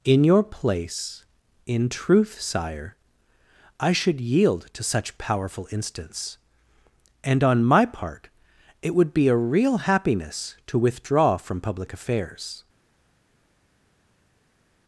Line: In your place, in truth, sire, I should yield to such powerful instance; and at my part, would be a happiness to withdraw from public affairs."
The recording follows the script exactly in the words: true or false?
false